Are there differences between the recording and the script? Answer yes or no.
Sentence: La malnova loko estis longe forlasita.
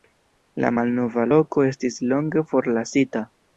no